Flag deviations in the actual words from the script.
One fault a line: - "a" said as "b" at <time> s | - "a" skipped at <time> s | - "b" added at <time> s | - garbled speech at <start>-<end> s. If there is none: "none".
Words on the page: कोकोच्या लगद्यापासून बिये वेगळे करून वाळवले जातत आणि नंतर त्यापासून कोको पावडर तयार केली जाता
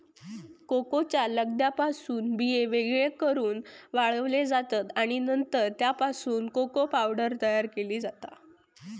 none